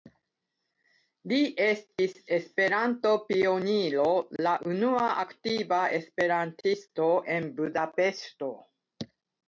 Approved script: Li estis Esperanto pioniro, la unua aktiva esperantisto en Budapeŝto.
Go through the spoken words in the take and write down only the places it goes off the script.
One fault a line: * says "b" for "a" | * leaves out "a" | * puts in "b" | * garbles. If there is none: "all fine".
all fine